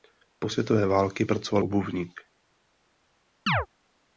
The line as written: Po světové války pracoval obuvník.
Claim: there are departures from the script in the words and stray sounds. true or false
true